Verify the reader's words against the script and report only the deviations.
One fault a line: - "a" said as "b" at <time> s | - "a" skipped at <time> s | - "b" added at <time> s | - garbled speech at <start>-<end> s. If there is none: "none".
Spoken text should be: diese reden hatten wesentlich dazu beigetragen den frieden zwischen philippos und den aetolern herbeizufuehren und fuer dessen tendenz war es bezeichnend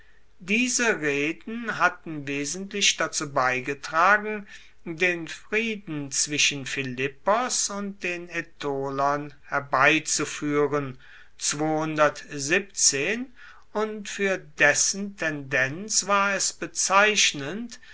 none